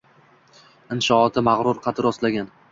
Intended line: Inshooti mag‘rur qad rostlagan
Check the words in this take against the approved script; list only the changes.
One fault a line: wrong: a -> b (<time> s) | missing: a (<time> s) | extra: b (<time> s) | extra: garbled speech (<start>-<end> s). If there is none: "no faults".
no faults